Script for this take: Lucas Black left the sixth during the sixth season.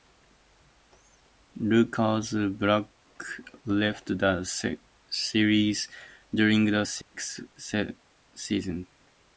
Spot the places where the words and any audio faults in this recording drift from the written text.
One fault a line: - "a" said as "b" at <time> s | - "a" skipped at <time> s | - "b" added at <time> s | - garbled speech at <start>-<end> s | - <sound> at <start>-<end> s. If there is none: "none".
- "sixth" said as "series" at 5.1 s
- dropout at 7.0-7.1 s